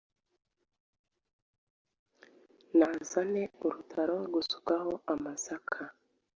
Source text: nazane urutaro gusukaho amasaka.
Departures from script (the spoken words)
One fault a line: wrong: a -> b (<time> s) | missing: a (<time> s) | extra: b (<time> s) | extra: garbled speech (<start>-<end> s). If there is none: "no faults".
no faults